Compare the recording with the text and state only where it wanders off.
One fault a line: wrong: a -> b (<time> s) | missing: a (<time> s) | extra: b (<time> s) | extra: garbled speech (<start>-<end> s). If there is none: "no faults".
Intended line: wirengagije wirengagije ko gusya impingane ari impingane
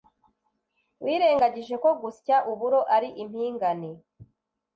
missing: wirengagije (1.8 s)
wrong: impingane -> uburo (2.5 s)